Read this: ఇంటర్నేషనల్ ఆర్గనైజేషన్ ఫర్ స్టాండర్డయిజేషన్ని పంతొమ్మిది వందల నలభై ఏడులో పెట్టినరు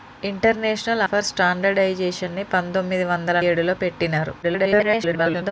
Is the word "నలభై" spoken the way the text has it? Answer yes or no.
no